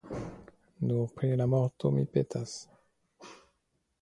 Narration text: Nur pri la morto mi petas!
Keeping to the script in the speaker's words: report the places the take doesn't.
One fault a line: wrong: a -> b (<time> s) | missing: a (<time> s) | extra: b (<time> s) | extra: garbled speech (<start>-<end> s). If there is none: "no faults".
no faults